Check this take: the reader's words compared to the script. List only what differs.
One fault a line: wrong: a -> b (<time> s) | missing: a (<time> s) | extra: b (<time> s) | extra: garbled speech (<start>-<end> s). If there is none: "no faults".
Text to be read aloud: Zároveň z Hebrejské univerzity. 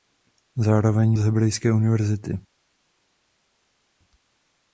no faults